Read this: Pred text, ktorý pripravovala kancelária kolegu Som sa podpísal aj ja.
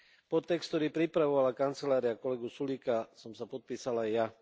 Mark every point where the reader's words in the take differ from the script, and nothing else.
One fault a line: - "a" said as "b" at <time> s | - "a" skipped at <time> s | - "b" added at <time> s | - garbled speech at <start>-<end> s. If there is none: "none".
- "Pred" said as "Pod" at 0.2 s
- "Sulíka" added at 2.5 s